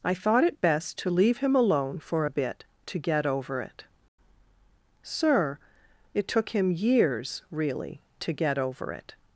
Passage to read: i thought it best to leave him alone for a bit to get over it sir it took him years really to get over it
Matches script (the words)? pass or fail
pass